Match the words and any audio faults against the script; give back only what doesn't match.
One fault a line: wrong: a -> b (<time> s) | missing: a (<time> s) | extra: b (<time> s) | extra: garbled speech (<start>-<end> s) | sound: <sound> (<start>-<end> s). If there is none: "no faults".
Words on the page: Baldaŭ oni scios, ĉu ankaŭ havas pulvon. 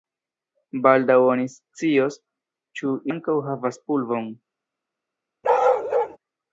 sound: bark (5.4-6.2 s)